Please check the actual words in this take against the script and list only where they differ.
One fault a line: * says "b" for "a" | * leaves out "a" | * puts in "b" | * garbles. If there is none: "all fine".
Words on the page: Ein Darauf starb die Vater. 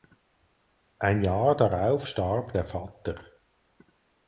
* puts in "Jahr"
* says "der" for "die"